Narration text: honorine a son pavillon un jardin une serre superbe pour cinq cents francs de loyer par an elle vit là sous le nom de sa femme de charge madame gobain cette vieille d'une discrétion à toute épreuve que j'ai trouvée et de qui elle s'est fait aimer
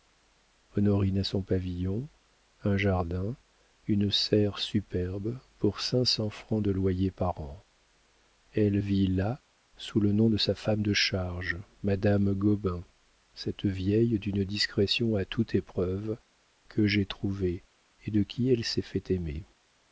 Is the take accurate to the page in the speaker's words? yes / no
yes